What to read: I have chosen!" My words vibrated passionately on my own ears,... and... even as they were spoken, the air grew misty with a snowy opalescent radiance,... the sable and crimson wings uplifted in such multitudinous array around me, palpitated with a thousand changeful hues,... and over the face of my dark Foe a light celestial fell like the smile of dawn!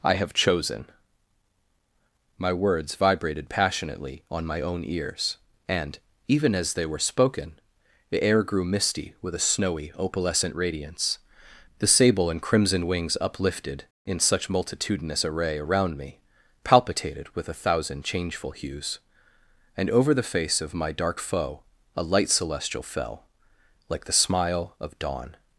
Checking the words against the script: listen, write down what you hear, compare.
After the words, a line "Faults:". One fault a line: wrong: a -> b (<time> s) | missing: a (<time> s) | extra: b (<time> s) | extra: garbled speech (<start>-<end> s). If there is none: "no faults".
I have chosen!" My words vibrated passionately on my own ears,... and... even as they were spoken, the air grew misty with a snowy opalescent radiance,... the sable and crimson wings uplifted in such multitudinous array around me, palpitated with a thousand changeful hues,... and over the face of my dark Foe a light celestial fell like the smile of dawn!
Faults:
no faults